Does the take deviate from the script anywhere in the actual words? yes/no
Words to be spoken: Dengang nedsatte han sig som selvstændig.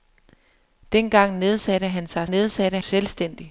yes